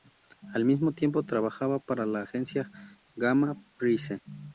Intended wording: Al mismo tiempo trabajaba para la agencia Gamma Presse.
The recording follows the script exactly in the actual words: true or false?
true